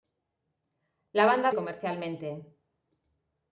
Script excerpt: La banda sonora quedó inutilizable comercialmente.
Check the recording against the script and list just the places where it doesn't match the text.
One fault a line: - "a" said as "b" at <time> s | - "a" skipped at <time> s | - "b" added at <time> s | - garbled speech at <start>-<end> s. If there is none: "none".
- "sonora quedó inutilizable" skipped at 1.5 s